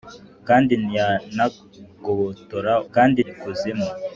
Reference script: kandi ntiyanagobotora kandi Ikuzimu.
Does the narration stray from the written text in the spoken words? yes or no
no